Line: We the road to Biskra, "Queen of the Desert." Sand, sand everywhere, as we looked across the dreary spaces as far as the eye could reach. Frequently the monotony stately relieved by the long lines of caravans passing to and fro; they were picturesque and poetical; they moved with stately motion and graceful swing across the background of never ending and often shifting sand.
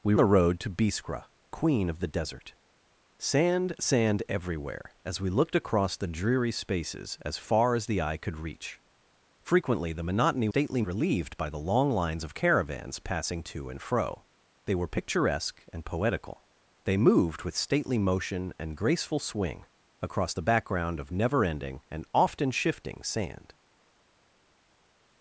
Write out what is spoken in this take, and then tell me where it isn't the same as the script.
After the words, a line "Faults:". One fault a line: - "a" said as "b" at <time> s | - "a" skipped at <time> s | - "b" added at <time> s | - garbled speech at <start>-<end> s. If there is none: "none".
We the road to Biskra, "Queen of the Desert." Sand, sand everywhere, as we looked across the dreary spaces as far as the eye could reach. Frequently the monotony stately relieved by the long lines of caravans passing to and fro; they were picturesque and poetical; they moved with stately motion and graceful swing across the background of never ending and often shifting sand.
Faults:
none